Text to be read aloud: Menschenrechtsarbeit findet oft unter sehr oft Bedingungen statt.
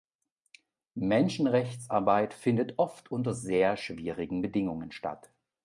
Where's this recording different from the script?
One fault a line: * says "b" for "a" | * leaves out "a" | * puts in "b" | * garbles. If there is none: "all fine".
* says "schwierigen" for "oft"